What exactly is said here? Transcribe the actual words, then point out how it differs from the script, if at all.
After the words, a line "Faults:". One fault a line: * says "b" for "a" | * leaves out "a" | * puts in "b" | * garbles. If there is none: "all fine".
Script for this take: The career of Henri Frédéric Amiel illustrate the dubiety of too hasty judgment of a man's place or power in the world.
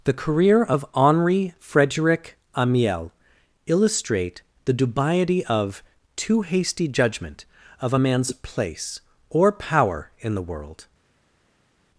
The career of Henri Frédéric Amiel illustrate the dubiety of too hasty judgment of a man's place or power in the world.
Faults:
all fine